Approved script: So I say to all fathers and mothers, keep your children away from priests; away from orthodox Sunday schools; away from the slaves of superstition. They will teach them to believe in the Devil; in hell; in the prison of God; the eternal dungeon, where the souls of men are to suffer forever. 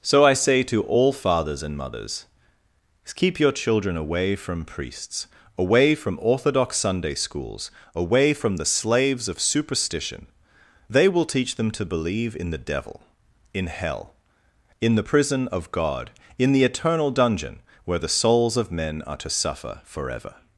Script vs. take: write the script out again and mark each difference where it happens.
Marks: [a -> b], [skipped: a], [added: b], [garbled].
So I say to all fathers and mothers, keep your children away from priests; away from orthodox Sunday schools; away from the slaves of superstition. They will teach them to believe in the Devil; in hell; in the prison of God; [added: in] the eternal dungeon, where the souls of men are to suffer forever.